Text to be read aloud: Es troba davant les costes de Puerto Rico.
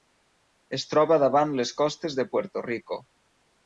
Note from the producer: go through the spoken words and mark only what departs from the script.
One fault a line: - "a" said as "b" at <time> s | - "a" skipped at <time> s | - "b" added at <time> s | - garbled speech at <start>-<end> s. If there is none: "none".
none